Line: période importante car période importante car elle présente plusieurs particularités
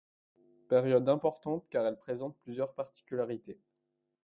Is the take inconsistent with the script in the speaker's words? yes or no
yes